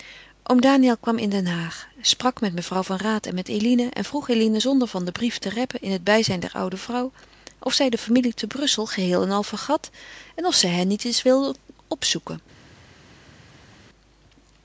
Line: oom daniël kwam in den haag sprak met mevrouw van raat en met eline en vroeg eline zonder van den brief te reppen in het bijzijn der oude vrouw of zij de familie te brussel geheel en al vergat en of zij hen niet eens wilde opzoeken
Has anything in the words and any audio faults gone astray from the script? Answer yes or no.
no